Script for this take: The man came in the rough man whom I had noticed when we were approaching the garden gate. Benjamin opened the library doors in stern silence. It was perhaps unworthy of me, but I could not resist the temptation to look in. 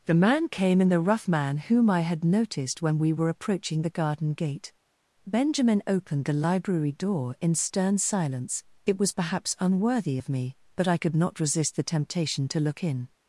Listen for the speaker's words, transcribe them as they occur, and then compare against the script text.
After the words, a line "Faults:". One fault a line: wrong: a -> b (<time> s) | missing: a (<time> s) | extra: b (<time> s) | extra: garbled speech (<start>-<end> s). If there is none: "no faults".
The man came in the rough man whom I had noticed when we were approaching the garden gate. Benjamin opened the library door in stern silence. It was perhaps unworthy of me, but I could not resist the temptation to look in.
Faults:
wrong: doors -> door (6.9 s)